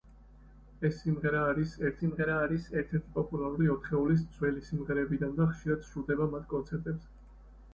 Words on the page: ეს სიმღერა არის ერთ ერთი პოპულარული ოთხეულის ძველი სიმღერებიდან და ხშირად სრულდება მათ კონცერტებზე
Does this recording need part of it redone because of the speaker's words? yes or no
yes